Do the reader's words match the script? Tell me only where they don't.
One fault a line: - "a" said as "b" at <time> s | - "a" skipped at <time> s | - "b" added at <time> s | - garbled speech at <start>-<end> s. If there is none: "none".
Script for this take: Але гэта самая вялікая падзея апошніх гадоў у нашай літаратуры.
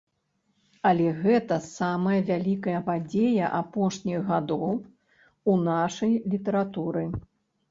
none